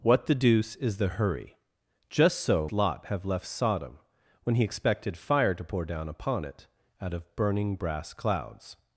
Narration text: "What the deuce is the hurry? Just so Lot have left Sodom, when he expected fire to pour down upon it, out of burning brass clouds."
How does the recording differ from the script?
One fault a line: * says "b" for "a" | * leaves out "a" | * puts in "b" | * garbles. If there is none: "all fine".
all fine